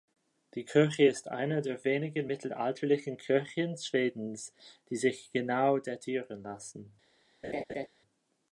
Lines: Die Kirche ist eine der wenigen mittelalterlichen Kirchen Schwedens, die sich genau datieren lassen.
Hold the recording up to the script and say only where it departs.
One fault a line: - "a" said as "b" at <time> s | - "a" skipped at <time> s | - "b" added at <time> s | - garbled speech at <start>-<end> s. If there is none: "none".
none